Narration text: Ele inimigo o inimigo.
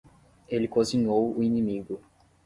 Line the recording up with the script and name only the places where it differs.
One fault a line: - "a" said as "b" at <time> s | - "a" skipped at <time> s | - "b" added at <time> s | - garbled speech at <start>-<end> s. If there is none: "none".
- "inimigo" said as "cozinhou" at 0.7 s